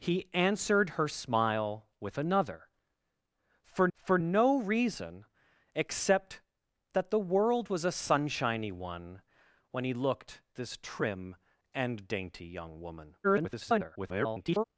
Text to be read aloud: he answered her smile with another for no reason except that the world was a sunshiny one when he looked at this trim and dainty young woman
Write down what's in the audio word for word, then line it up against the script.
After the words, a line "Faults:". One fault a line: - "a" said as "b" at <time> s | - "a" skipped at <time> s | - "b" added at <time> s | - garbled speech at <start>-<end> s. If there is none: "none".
he answered her smile with another for for no reason except that the world was a sunshiny one when he looked this trim and dainty young woman [garbled]
Faults:
- "for" added at 3.9 s
- "at" skipped at 10.4 s
- garbled speech at 13.2-14.6 s